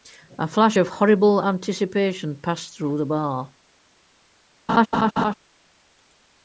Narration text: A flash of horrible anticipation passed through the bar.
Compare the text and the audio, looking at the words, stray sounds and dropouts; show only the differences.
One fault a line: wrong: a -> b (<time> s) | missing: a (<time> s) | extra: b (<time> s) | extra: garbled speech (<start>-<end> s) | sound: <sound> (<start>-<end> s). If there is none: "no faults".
sound: laugh (4.7-5.3 s)